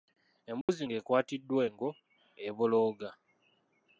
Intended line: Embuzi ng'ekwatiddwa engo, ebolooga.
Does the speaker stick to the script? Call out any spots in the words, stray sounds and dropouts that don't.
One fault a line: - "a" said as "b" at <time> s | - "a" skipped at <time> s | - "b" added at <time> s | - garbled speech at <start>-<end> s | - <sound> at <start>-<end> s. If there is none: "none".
- dropout at 0.6-0.7 s